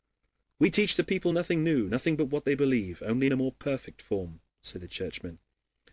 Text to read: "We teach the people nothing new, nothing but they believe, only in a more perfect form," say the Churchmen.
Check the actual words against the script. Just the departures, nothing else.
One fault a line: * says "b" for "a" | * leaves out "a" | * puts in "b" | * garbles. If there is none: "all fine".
* puts in "what"